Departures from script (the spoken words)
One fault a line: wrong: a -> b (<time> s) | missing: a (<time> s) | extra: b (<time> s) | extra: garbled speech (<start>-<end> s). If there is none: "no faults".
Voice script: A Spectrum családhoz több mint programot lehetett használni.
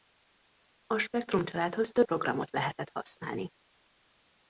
missing: mint (2.1 s)